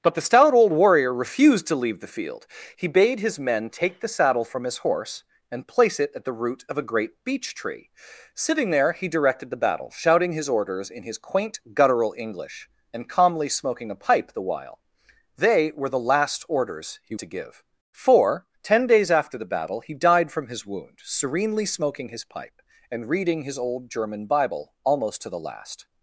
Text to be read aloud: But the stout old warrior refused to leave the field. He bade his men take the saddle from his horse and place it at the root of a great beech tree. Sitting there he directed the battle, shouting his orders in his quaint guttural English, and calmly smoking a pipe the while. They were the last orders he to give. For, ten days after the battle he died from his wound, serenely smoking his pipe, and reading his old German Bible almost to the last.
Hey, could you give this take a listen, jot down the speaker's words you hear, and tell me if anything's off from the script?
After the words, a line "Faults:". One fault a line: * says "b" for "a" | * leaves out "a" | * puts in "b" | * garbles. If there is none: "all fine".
But the stout old warrior refused to leave the field. He bade his men take the saddle from his horse and place it at the root of a great beech tree. Sitting there he directed the battle, shouting his orders in his quaint guttural English, and calmly smoking a pipe the while. They were the last orders he to give. For, ten days after the battle he died from his wound, serenely smoking his pipe, and reading his old German Bible almost to the last.
Faults:
all fine